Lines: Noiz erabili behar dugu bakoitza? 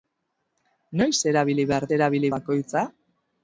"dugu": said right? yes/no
no